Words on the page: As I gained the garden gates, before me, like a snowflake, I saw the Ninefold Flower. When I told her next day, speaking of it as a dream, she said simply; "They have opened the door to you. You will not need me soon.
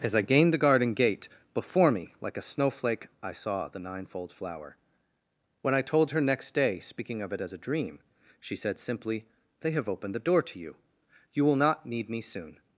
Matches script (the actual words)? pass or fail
fail